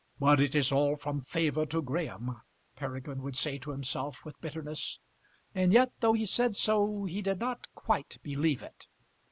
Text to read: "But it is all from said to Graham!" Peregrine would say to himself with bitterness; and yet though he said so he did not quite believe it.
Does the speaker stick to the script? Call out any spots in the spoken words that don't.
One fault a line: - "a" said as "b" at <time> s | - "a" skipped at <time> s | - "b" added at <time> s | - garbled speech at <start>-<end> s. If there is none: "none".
- "said" said as "favour" at 1.2 s